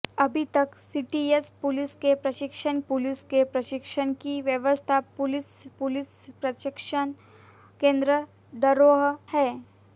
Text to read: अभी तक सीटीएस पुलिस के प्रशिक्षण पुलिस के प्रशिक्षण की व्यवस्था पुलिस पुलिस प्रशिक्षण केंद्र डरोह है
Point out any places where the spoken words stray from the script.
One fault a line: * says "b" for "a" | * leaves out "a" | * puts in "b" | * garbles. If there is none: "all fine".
all fine